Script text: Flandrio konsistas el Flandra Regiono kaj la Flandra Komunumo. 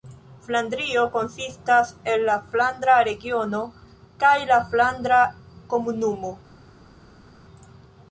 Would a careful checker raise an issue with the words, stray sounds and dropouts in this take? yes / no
yes